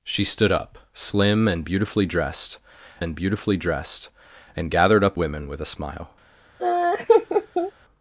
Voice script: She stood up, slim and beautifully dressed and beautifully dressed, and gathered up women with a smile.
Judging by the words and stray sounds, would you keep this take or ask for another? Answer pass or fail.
fail